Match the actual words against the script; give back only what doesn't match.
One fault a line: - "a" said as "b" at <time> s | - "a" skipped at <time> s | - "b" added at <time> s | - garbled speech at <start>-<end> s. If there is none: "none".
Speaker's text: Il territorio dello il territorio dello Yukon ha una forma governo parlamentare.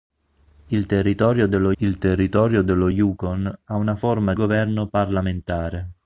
none